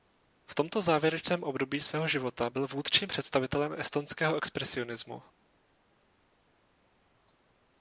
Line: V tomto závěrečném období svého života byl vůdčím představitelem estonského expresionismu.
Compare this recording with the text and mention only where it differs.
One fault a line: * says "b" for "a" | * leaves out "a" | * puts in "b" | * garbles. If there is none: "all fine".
all fine